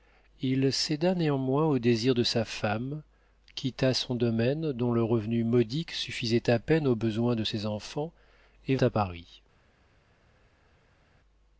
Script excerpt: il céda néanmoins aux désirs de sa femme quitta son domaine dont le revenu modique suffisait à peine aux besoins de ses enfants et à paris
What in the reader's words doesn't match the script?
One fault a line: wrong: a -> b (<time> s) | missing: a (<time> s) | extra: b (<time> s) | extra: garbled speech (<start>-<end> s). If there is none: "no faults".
no faults